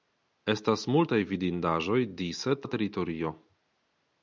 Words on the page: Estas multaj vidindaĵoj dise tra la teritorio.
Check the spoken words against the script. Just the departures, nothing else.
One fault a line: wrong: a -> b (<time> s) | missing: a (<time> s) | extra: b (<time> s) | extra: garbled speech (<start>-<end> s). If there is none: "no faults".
missing: tra (2.6 s)